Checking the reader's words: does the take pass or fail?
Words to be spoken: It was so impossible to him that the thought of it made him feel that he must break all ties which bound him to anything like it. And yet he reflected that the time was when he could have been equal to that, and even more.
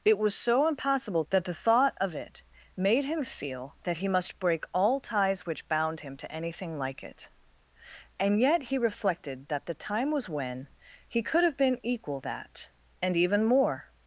fail